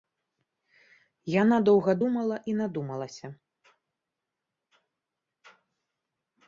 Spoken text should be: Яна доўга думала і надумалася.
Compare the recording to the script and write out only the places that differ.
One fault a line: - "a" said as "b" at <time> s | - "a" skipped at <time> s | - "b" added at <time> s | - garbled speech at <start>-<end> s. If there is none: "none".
none